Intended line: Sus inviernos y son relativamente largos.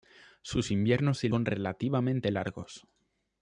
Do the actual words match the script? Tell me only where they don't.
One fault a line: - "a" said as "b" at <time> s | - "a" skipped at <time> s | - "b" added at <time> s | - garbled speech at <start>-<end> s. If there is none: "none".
none